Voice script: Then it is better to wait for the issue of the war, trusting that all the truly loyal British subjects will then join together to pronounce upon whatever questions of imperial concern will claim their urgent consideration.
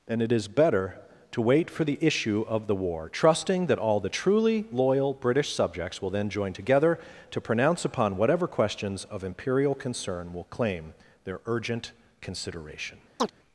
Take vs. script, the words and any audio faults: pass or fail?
fail